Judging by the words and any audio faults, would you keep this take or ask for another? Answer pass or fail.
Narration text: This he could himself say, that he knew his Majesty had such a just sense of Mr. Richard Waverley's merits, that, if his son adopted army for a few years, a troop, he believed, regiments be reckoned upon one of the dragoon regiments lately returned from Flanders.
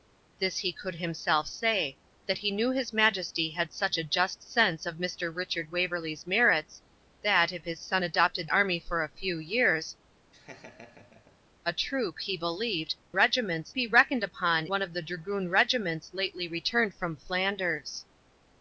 fail